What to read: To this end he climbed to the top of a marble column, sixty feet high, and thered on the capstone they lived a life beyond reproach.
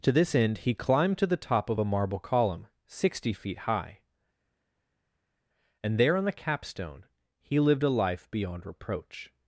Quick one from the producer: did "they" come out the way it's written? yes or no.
no